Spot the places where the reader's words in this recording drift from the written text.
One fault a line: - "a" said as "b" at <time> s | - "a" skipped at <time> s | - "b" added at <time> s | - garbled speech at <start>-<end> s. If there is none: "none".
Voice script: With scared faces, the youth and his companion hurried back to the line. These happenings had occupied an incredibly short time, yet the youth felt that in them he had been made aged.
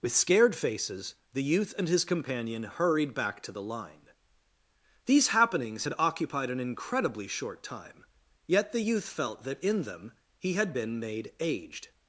none